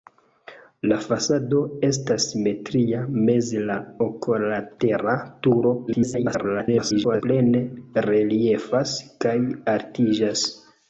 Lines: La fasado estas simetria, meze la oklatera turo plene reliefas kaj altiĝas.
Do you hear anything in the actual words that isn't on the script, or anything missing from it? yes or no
yes